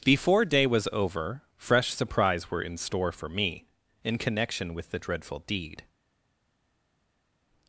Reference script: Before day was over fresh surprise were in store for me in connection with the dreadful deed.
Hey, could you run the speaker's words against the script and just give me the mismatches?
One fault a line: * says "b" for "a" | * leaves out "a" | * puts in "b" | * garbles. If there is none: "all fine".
all fine